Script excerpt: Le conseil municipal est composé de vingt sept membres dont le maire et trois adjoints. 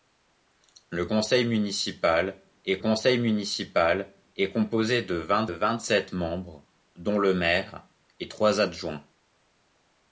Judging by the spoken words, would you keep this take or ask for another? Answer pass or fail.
fail